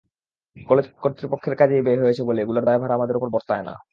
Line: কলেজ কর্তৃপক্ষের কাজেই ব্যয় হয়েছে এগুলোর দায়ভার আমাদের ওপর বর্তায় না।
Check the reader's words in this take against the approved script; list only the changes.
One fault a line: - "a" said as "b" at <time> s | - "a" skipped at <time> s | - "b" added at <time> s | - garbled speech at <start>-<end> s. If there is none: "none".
- "বলে" added at 2.3 s